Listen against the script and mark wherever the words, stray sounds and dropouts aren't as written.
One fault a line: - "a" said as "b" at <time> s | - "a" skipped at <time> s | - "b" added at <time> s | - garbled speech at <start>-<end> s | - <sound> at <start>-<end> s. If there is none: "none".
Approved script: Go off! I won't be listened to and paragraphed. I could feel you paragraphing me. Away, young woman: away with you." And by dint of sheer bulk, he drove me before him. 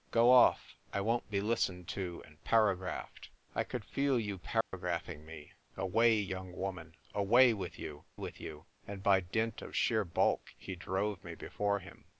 - dropout at 4.6-4.7 s
- "with you" added at 8.2 s